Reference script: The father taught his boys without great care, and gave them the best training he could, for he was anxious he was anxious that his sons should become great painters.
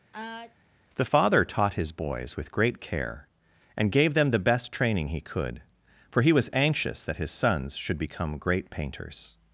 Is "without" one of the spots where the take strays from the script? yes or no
yes